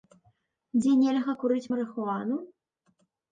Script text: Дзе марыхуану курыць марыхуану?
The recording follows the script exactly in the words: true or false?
false